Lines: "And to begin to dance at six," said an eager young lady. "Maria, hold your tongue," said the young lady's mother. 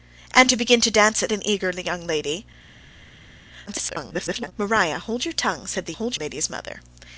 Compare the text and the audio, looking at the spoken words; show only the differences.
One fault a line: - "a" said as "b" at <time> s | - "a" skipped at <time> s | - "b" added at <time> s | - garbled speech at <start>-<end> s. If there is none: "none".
- "six said" skipped at 1.3 s
- garbled speech at 3.7-4.5 s
- "young" said as "hold" at 5.9 s